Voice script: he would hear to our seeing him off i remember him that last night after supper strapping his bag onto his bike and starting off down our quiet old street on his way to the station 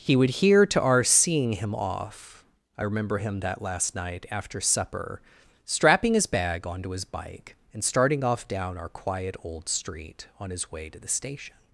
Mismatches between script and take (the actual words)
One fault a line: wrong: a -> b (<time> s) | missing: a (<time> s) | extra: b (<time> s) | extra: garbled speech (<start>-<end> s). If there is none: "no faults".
no faults